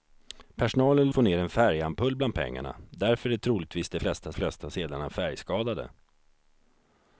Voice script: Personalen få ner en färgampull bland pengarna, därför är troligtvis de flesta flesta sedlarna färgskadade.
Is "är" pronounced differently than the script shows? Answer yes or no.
no